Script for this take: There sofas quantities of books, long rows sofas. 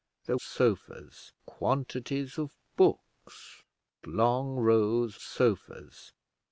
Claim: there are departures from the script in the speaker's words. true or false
false